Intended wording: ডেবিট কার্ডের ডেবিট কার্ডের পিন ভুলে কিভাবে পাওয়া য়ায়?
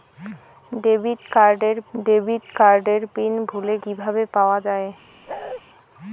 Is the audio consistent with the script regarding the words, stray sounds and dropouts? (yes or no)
no